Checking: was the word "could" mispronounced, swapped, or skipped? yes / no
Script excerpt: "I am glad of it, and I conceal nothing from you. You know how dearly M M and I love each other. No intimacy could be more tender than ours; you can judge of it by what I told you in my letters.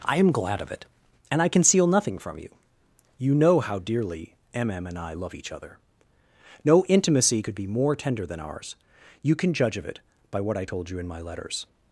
no